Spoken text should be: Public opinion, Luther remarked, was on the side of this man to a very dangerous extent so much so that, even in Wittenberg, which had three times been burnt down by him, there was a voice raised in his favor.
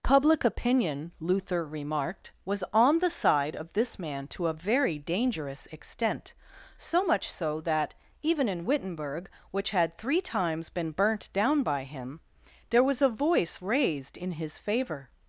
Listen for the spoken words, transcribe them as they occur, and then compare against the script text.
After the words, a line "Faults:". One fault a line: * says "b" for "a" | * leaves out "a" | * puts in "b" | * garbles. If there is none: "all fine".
Public opinion, Luther remarked, was on the side of this man to a very dangerous extent so much so that, even in Wittenberg, which had three times been burnt down by him, there was a voice raised in his favor.
Faults:
all fine